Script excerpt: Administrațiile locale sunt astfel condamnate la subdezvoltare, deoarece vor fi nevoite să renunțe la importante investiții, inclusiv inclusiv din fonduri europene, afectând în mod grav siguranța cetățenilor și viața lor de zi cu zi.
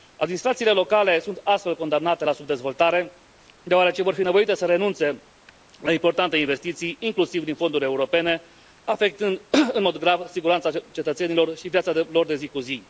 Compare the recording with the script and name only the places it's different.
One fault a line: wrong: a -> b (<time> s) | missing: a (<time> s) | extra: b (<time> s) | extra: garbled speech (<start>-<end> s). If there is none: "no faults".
missing: inclusiv (7.4 s)